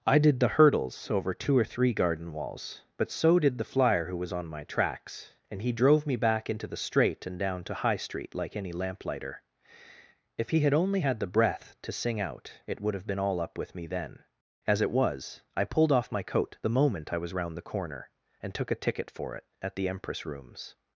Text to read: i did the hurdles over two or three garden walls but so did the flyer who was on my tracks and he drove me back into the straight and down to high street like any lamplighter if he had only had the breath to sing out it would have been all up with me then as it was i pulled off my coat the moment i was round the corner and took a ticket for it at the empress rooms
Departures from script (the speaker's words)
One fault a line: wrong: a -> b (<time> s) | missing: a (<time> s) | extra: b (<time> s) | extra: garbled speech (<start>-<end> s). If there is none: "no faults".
no faults